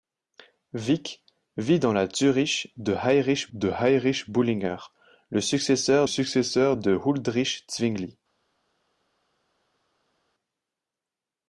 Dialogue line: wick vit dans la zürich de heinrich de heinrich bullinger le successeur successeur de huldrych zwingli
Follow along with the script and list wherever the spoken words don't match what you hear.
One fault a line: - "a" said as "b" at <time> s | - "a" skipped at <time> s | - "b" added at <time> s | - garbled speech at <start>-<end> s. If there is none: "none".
none